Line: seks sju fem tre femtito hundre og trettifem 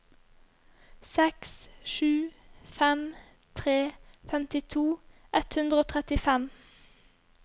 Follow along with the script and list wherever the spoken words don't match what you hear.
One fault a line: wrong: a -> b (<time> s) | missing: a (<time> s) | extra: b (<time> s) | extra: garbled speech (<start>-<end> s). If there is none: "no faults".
extra: ett (5.4 s)